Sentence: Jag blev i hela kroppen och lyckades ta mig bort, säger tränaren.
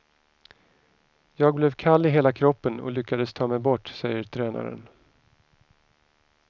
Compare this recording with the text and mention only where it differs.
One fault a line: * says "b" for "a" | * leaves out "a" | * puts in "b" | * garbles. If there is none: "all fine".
* puts in "kall"